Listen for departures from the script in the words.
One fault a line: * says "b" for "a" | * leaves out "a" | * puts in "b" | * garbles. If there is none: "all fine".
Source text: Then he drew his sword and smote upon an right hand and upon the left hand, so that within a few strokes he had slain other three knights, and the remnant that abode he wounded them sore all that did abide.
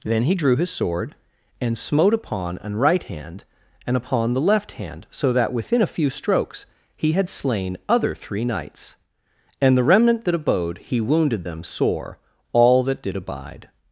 all fine